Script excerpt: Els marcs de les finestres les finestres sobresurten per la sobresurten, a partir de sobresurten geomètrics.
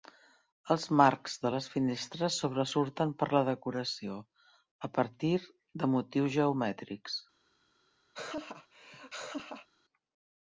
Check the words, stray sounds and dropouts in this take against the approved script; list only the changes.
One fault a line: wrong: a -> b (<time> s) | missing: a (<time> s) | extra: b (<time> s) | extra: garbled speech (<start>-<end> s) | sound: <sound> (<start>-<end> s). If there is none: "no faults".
missing: les finestres (2.4 s)
wrong: sobresurten -> decoració (3.5 s)
wrong: sobresurten -> motius (6.0 s)
sound: laugh (8.1-9.7 s)